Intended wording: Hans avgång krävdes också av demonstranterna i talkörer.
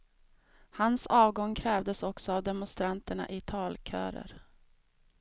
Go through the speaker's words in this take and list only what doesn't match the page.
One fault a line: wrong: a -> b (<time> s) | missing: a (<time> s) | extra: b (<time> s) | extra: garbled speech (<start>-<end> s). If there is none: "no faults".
no faults